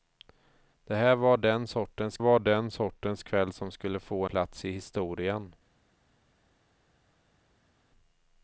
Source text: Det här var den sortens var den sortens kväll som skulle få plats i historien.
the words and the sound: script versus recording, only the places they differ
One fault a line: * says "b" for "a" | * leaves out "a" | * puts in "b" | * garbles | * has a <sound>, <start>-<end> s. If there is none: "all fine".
all fine